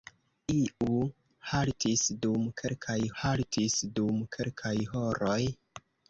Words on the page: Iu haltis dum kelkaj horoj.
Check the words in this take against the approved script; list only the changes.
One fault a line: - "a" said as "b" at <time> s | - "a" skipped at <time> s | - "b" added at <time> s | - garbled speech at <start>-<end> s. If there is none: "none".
- "haltis dum kelkaj" added at 3.2 s